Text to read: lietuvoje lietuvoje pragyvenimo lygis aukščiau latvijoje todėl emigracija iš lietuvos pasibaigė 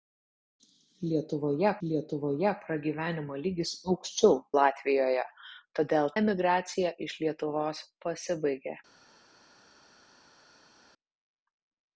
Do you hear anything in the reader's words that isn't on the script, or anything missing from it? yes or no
no